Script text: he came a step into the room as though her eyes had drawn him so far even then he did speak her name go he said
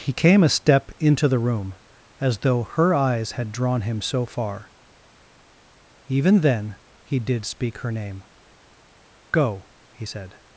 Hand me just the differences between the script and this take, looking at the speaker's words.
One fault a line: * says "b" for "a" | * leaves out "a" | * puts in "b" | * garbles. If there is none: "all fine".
all fine